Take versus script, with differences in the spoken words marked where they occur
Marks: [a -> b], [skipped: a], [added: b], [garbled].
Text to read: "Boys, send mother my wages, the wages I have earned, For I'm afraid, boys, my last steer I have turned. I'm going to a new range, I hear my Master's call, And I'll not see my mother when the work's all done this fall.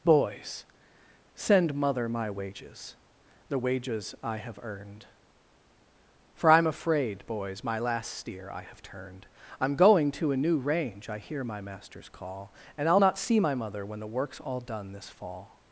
"Boys, send mother my wages, the wages I have earned, For I'm afraid, boys, my last steer I have turned. I'm going to a new range, I hear my Master's call, And I'll not see my mother when the work's all done this fall.